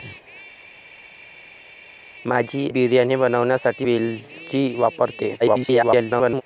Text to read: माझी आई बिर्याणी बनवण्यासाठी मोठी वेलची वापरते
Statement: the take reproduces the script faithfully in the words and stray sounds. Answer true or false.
false